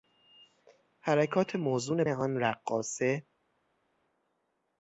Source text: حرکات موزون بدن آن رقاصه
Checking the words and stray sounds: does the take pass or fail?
fail